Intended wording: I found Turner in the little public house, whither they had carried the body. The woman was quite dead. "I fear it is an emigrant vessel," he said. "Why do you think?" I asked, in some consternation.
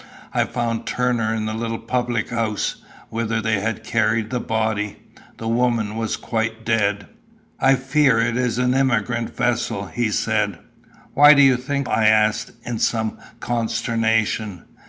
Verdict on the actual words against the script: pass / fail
pass